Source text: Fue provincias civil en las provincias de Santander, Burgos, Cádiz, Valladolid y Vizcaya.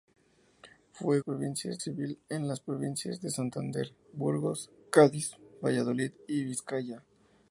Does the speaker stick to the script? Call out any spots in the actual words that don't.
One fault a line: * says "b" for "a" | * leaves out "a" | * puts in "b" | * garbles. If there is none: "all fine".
all fine